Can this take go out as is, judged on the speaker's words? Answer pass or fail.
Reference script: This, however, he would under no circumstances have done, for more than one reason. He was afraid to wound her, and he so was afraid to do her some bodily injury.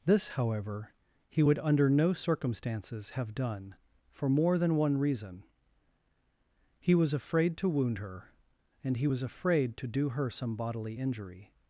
fail